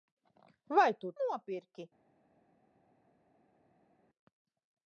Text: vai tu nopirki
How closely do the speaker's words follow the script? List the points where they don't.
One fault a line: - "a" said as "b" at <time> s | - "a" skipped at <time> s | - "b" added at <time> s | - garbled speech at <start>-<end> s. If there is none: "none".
none